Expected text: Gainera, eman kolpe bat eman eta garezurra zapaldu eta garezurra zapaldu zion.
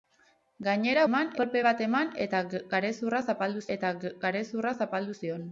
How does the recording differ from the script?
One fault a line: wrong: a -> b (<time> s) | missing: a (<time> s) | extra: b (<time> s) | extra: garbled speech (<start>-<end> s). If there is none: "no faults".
no faults